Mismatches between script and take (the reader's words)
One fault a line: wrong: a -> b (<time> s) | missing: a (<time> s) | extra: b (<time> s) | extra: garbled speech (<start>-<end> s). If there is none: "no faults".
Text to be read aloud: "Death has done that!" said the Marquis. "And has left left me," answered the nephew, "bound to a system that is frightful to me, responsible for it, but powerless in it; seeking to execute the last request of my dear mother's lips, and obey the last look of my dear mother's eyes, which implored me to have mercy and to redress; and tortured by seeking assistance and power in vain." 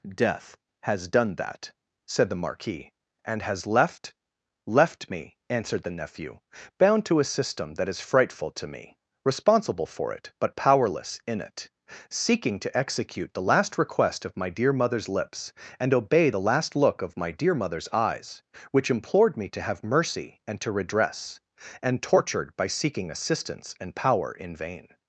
no faults